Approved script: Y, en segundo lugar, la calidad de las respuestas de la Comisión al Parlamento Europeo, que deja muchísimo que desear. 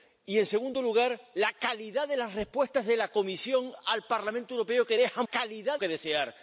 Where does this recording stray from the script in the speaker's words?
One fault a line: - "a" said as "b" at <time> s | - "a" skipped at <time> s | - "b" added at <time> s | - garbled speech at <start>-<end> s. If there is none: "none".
- "muchísimo" said as "calidad" at 5.2 s